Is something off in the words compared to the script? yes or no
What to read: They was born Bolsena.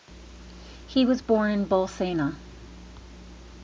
yes